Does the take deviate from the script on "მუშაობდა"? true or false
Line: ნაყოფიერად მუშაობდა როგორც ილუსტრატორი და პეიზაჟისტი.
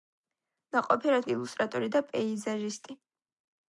true